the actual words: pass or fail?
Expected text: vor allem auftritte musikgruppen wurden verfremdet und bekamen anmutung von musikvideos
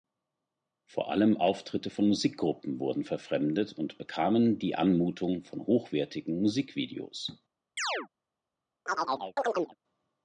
fail